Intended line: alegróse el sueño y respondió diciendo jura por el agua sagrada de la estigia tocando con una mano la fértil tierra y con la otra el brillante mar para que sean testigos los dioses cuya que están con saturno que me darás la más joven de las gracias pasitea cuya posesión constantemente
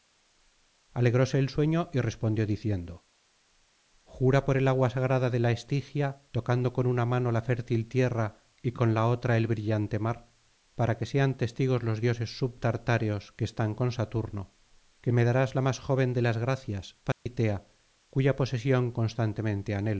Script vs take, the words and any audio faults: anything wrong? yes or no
yes